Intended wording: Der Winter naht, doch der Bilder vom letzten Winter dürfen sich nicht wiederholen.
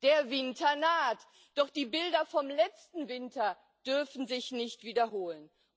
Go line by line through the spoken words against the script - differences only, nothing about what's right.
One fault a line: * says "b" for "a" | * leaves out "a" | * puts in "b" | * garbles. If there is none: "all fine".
* says "die" for "der"